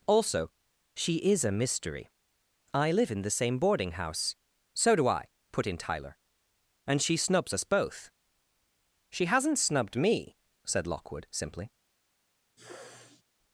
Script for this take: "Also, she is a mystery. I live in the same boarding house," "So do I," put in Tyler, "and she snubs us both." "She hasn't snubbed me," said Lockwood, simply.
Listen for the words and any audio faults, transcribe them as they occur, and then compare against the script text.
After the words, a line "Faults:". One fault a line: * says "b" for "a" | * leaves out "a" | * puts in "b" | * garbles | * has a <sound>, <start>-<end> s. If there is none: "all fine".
"Also, she is a mystery. I live in the same boarding house," "So do I," put in Tyler, "and she snubs us both." "She hasn't snubbed me," said Lockwood, simply.
Faults:
* has a sneeze, 12.6-13.2 s